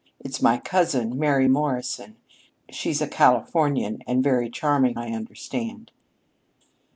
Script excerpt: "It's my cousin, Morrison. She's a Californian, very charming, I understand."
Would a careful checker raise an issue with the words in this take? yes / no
yes